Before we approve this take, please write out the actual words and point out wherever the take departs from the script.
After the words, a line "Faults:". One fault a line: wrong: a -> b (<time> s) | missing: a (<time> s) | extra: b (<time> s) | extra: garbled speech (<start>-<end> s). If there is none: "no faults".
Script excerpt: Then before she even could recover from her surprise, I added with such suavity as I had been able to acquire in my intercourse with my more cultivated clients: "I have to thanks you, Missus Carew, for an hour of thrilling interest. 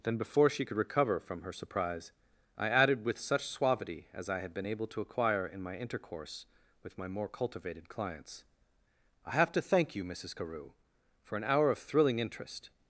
Then before she could recover from her surprise, I added with such suavity as I had been able to acquire in my intercourse with my more cultivated clients: "I have to thank you, Missus Carew, for an hour of thrilling interest.
Faults:
missing: even (0.7 s)
wrong: thanks -> thank (9.6 s)